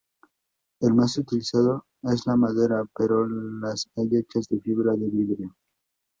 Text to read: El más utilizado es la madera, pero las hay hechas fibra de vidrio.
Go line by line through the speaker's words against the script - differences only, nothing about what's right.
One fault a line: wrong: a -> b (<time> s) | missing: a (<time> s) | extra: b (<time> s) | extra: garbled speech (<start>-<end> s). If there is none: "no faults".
extra: de (4.5 s)